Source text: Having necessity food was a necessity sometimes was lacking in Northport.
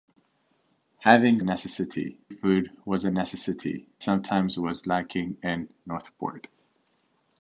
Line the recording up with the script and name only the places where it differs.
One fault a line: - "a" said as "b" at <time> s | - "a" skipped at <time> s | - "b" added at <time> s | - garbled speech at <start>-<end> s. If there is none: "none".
none